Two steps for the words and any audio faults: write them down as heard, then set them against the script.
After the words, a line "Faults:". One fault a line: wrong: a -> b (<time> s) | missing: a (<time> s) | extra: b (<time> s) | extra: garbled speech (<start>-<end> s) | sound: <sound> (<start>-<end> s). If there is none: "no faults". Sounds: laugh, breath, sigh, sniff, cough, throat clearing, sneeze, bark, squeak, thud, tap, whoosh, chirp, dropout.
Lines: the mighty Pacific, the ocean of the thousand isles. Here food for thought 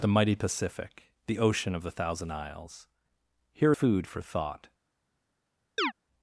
the mighty Pacific, the ocean of the thousand isles. Here food for thought
Faults:
sound: chirp (5.8-5.9 s)